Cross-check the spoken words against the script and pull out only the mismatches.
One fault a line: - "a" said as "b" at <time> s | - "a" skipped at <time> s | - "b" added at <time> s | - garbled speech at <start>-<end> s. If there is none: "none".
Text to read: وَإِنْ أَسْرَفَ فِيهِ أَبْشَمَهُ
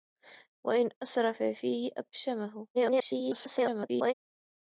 - garbled speech at 2.7-4.1 s